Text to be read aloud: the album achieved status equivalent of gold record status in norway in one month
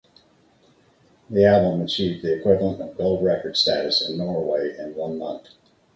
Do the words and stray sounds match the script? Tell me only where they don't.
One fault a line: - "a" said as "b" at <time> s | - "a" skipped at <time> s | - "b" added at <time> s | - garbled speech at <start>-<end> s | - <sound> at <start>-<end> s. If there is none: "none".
- "status" said as "the" at 2.2 s